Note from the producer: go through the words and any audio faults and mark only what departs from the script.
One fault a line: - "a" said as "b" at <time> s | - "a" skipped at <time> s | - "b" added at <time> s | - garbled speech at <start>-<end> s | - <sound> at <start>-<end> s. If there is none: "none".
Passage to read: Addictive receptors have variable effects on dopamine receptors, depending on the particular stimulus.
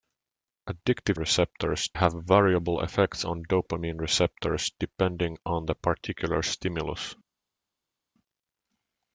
none